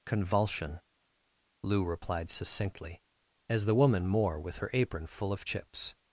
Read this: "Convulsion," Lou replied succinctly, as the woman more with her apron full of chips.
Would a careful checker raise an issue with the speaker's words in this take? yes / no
no